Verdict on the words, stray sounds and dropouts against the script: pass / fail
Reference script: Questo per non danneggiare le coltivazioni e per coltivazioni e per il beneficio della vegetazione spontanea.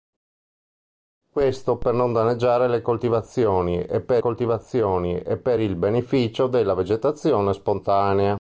pass